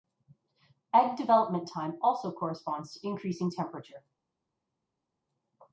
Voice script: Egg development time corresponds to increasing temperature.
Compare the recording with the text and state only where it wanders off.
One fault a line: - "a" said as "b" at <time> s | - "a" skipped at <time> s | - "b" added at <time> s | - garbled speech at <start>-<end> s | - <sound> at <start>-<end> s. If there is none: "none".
- "also" added at 2.0 s